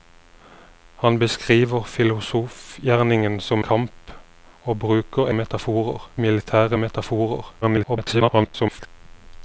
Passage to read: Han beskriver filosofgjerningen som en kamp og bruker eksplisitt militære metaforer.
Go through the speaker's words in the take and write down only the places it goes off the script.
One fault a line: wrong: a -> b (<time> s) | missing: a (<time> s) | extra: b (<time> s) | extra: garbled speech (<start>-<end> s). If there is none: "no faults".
missing: en (3.6 s)
wrong: eksplisitt -> metaforer (5.3 s)
extra: garbled speech (7.6-8.9 s)